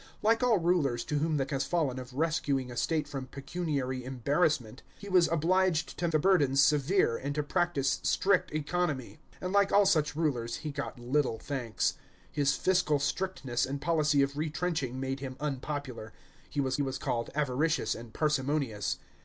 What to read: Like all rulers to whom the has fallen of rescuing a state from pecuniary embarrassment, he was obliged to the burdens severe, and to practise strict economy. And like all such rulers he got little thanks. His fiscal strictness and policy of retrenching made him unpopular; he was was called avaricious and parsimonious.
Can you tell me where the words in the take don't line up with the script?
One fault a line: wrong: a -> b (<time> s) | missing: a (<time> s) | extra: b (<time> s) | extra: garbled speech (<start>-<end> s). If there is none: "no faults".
no faults